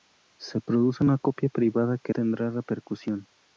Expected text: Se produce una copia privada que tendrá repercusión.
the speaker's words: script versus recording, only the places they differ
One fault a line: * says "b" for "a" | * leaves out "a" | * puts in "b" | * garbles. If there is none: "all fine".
all fine